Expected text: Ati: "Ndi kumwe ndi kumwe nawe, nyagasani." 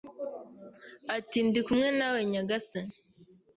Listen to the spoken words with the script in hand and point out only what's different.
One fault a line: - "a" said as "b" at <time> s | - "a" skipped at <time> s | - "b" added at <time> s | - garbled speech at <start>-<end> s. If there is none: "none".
- "ndi kumwe" skipped at 1.9 s